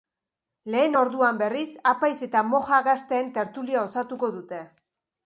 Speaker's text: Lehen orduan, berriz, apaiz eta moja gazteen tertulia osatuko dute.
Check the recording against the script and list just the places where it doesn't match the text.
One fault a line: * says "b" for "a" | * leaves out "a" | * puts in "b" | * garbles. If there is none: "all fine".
all fine